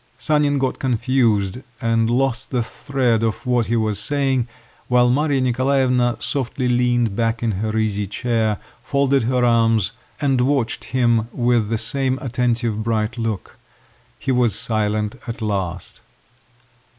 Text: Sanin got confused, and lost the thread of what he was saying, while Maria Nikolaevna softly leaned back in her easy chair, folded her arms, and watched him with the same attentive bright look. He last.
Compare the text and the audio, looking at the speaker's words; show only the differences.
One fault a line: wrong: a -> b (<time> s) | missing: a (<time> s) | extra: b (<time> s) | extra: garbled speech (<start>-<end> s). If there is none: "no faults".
extra: was silent at (14.3 s)